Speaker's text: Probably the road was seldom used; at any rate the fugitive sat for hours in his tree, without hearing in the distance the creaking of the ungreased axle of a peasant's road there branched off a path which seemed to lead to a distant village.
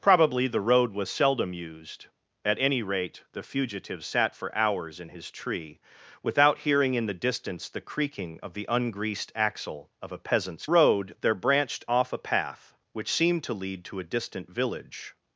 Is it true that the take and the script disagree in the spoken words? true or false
false